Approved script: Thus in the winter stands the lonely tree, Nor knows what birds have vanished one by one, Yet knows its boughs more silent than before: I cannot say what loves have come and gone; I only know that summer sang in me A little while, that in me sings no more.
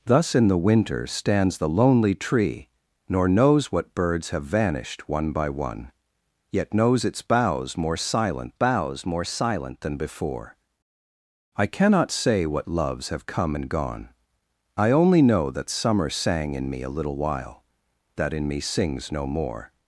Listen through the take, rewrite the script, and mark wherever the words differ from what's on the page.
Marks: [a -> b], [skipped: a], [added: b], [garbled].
Thus in the winter stands the lonely tree, Nor knows what birds have vanished one by one, Yet knows its boughs more silent [added: boughs more silent] than before: I cannot say what loves have come and gone; I only know that summer sang in me A little while, that in me sings no more.